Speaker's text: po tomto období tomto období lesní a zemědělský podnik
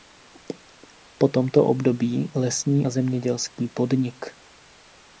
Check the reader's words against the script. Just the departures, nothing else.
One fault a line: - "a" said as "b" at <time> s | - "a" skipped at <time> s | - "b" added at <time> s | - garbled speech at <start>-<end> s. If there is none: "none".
- "tomto období" skipped at 2.3 s